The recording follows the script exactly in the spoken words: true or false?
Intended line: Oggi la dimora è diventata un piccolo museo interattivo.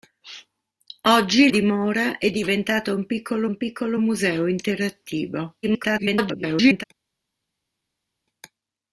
false